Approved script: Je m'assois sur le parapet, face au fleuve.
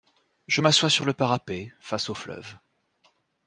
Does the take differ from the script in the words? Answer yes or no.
no